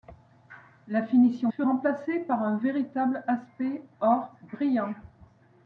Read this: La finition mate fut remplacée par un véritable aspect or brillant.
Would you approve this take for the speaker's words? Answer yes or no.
no